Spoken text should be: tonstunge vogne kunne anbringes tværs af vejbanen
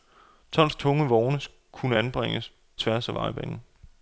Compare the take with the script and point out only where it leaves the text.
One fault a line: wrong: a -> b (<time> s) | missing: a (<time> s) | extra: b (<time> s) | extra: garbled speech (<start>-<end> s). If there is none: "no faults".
no faults